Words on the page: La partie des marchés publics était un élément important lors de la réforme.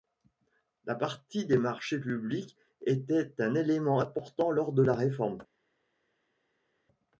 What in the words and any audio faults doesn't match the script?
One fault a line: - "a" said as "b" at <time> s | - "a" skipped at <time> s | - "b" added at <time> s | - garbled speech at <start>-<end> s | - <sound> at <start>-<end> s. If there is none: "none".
none